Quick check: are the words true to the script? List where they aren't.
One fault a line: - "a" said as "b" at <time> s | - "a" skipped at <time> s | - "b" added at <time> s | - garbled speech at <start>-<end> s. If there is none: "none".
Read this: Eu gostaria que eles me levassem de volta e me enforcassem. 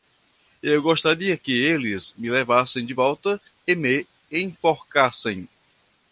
none